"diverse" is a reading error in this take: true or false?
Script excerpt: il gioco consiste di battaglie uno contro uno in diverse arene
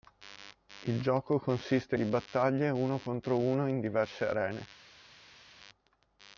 false